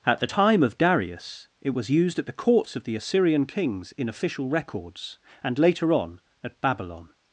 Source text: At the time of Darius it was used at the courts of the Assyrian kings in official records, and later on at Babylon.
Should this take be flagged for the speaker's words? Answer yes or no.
no